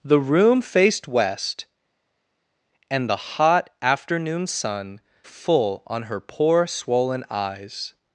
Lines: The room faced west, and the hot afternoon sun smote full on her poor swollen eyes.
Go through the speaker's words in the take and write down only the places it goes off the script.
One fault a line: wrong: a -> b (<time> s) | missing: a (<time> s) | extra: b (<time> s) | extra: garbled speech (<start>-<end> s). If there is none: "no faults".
missing: smote (5.0 s)